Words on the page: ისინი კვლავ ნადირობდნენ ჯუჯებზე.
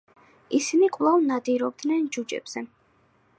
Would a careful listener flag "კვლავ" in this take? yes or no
no